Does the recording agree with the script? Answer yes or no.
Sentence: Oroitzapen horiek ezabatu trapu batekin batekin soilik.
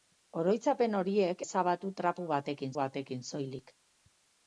yes